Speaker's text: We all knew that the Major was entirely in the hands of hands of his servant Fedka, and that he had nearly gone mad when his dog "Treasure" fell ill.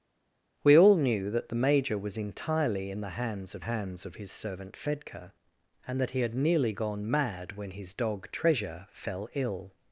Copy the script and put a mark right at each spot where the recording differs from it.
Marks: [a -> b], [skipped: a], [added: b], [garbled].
We all knew that the Major was entirely in the hands of hands of his servant Fedka, and that he had nearly gone mad when his dog "Treasure" fell ill.